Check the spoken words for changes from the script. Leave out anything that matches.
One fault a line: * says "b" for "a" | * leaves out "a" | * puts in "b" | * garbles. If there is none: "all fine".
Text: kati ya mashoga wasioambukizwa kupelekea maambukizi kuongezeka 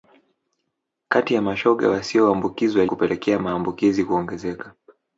all fine